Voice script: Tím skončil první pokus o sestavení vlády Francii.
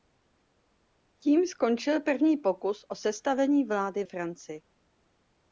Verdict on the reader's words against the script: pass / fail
pass